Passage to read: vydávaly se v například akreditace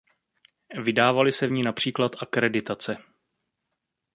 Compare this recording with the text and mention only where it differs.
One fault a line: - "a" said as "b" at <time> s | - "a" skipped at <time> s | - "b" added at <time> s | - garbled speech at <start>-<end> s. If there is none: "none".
- "ní" added at 1.5 s